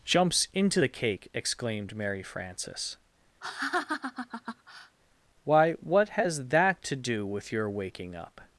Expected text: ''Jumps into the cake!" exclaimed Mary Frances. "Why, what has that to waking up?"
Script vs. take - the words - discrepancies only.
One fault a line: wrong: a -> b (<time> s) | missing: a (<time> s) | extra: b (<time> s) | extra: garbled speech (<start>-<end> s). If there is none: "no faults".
extra: do with your (7.0 s)